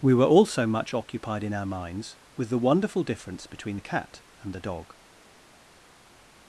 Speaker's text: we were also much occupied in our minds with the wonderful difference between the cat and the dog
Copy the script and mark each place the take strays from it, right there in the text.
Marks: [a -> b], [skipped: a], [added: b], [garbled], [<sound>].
we were also much occupied in our minds with the wonderful difference between the cat and the dog